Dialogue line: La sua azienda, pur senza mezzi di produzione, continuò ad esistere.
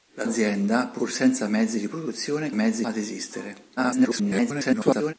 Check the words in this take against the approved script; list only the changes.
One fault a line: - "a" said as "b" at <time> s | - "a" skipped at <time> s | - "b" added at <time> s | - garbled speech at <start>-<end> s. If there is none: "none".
- "sua" skipped at 0.2 s
- "continuò" said as "mezzi" at 2.5 s
- garbled speech at 3.8-5.1 s